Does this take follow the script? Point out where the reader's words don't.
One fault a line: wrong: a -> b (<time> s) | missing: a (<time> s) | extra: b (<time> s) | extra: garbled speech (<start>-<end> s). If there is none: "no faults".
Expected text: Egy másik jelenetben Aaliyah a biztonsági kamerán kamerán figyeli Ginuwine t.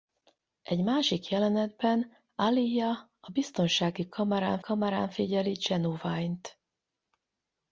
no faults